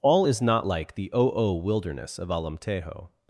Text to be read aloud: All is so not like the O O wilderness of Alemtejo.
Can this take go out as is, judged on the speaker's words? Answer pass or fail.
fail